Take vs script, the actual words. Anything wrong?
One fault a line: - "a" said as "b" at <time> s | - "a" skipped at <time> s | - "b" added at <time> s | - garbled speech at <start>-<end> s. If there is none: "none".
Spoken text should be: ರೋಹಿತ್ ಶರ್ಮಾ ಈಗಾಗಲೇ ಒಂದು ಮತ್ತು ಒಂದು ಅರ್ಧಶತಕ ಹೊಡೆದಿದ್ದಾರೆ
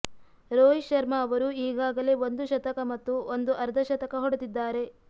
- "ಅವರು" added at 1.2 s
- "ಶತಕ" added at 2.5 s